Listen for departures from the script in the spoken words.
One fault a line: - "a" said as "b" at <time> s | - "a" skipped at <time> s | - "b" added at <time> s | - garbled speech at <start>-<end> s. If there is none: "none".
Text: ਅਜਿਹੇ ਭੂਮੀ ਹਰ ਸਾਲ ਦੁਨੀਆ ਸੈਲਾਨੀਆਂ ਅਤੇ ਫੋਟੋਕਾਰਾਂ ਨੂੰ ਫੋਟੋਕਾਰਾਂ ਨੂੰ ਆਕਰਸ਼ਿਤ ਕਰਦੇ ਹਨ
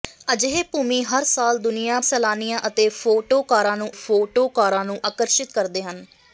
none